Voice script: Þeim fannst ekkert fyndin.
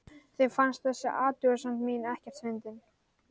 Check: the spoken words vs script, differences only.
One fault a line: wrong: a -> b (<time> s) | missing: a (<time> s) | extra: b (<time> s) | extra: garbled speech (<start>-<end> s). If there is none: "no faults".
extra: þessi athugasemd mín (0.9 s)